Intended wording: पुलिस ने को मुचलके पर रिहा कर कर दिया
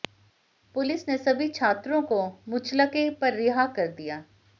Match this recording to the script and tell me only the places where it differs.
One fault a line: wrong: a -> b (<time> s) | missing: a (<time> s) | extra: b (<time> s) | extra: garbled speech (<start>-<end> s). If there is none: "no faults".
extra: सभी छात्रों (1.2 s)
missing: कर (3.9 s)